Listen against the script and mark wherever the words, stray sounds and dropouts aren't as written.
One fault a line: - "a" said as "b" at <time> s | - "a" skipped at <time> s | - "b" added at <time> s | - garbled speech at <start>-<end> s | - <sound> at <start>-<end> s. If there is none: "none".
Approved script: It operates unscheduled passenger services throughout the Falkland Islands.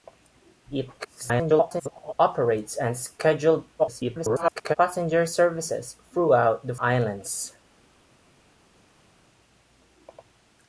- garbled speech at 1.0-2.1 s
- garbled speech at 3.8-4.8 s
- "Falkland" skipped at 6.8 s